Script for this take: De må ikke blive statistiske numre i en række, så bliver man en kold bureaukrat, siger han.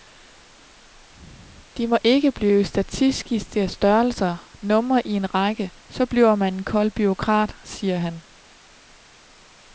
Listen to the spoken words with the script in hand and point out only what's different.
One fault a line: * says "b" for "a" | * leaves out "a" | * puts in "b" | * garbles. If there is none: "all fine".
* puts in "størrelser"